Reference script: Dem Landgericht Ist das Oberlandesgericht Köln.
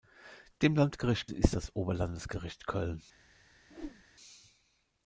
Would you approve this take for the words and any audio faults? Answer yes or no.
no